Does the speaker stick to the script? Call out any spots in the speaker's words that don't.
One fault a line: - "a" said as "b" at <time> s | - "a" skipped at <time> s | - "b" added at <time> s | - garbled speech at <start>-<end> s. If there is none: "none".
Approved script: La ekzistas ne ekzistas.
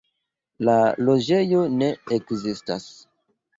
- "ekzistas" said as "loĝejo" at 1.1 s